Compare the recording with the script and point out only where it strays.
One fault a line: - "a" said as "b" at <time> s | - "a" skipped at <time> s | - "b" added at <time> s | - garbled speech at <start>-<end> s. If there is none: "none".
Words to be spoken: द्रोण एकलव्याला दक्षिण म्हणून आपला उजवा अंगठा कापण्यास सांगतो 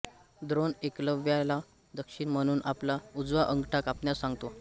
none